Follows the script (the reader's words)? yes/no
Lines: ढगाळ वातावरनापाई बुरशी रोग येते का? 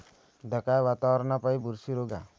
no